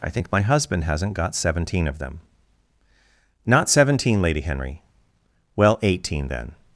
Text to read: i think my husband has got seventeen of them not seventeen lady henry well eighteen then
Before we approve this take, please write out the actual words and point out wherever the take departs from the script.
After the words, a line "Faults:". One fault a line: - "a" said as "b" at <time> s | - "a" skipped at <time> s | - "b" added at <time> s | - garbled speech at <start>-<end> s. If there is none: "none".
i think my husband hasn't got seventeen of them not seventeen lady henry well eighteen then
Faults:
- "has" said as "hasn't" at 0.8 s